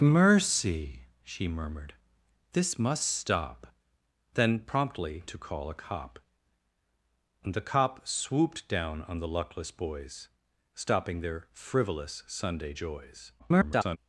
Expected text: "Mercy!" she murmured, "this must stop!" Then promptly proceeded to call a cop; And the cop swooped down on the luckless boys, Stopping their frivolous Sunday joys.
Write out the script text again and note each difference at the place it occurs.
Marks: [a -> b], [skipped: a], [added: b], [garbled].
"Mercy!" she murmured, "this must stop!" Then promptly [skipped: proceeded] to call a cop; And the cop swooped down on the luckless boys, Stopping their frivolous Sunday joys. [garbled]